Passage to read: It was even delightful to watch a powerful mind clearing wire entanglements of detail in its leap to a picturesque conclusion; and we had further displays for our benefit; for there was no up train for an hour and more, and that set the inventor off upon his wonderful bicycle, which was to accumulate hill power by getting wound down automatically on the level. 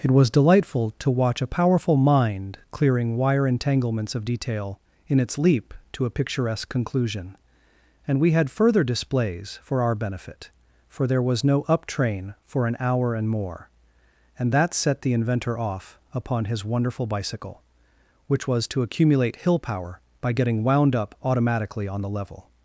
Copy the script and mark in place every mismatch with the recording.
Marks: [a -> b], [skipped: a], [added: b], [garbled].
It was [skipped: even] delightful to watch a powerful mind clearing wire entanglements of detail in its leap to a picturesque conclusion; and we had further displays for our benefit; for there was no up train for an hour and more, and that set the inventor off upon his wonderful bicycle, which was to accumulate hill power by getting wound [down -> up] automatically on the level.